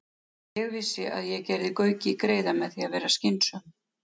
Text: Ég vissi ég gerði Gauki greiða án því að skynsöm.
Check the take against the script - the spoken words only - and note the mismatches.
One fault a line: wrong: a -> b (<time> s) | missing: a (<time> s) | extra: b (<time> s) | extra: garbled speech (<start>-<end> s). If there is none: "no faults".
extra: að (1.2 s)
wrong: án -> með (2.6 s)
extra: vera (3.0 s)